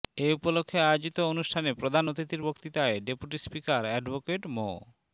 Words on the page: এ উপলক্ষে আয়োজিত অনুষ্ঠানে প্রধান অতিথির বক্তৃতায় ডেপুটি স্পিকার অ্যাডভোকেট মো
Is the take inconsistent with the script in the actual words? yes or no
no